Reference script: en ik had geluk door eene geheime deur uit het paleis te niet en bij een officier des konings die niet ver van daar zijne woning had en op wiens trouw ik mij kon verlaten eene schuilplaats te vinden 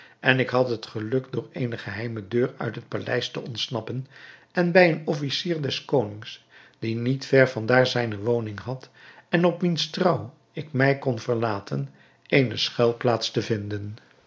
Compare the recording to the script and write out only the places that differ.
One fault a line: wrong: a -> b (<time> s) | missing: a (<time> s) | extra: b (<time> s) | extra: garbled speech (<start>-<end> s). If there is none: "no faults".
extra: het (0.7 s)
wrong: niet -> ontsnappen (3.4 s)